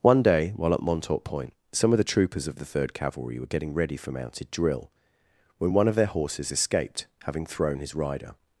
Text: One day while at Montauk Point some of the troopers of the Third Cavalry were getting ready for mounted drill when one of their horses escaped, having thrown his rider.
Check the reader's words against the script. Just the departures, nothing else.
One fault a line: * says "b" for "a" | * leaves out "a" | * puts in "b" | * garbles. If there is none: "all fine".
all fine